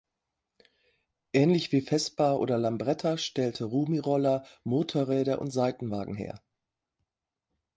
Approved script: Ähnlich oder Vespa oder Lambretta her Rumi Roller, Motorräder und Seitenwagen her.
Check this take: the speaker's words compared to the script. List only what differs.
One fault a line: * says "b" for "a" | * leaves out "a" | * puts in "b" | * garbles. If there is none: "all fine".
* says "wie" for "oder"
* says "stellte" for "her"